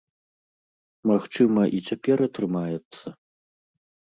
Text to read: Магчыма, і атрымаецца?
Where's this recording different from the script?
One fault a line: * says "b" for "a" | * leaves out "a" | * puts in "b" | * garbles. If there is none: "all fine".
* puts in "цяпер"